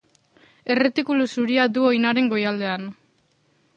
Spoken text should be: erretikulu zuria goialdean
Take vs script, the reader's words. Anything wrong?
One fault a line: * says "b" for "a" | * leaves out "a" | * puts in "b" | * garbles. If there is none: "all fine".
* puts in "du oinaren"